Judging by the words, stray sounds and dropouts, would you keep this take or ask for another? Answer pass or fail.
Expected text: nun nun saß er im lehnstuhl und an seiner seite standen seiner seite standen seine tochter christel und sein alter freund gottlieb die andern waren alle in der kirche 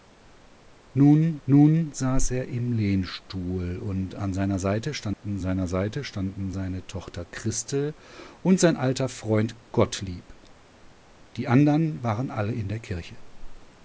fail